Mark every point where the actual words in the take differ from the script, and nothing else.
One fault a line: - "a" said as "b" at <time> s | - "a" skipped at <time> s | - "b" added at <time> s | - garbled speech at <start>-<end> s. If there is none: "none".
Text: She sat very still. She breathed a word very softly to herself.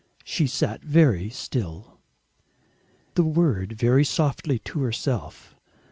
- "She breathed" skipped at 2.0 s